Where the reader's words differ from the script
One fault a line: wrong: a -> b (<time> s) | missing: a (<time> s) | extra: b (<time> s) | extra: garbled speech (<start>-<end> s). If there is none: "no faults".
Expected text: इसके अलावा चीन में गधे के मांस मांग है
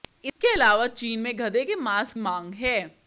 no faults